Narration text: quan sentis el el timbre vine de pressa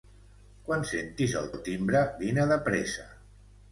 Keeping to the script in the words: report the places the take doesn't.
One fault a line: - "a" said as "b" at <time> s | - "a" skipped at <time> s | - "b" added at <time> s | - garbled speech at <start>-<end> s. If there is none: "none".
none